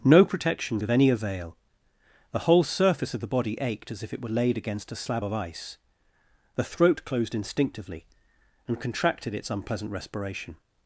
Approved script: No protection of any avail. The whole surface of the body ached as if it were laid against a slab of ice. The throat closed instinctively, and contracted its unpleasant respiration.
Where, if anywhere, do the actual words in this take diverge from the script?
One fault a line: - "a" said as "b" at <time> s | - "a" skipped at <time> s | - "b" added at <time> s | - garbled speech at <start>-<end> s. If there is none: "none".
none